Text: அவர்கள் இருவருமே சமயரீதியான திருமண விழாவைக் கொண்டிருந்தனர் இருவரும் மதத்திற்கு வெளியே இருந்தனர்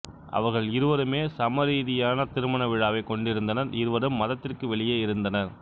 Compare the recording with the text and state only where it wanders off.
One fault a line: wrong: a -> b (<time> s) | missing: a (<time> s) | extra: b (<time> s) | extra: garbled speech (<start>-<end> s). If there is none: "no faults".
no faults